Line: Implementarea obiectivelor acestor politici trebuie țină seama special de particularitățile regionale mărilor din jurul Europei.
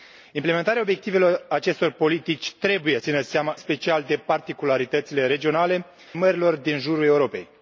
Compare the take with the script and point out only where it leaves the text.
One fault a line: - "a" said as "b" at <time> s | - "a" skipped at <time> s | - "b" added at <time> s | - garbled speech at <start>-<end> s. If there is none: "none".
none